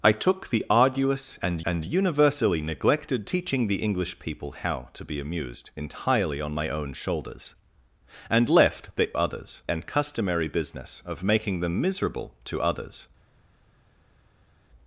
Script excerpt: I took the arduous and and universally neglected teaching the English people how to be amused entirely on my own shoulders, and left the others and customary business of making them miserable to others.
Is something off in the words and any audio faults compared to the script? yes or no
no